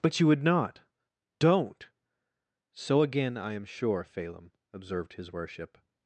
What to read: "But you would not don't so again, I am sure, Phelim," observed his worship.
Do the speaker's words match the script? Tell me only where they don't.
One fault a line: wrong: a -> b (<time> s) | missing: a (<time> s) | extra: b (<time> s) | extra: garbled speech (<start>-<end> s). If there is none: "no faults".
no faults